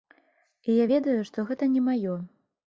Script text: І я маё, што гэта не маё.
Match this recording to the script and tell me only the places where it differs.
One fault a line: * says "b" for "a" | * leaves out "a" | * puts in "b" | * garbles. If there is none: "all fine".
* says "ведаю" for "маё"